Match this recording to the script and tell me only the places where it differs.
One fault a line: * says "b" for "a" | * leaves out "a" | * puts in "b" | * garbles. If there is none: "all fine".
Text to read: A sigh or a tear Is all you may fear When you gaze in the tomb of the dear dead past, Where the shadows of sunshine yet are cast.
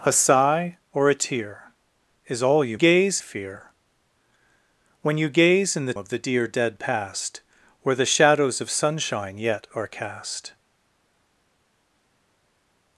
* says "gaze" for "may"
* leaves out "tomb"